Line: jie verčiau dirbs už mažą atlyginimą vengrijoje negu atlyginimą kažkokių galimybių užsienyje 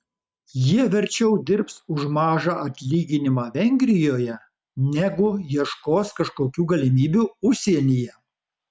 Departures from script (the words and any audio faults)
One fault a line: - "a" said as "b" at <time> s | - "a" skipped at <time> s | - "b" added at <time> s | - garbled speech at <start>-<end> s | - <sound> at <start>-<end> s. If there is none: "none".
- "atlyginimą" said as "ieškos" at 5.6 s